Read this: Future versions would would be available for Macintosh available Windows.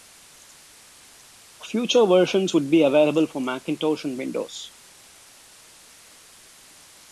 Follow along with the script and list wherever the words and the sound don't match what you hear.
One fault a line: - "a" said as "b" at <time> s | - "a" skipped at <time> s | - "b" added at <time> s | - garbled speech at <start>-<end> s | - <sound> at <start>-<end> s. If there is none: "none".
- "would" skipped at 2.7 s
- "available" said as "and" at 4.1 s